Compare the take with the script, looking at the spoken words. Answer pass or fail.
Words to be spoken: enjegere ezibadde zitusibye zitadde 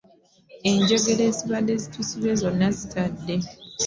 fail